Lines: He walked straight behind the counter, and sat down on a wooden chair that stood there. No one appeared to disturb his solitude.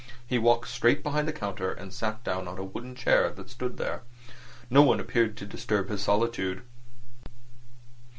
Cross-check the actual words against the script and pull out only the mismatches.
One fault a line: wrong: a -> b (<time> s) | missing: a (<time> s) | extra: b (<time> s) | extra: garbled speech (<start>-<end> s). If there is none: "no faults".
no faults